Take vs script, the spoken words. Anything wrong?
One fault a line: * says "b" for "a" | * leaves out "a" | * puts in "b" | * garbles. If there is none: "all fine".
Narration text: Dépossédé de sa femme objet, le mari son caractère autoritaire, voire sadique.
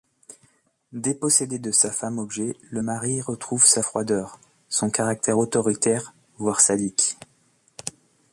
* puts in "retrouve sa froideur"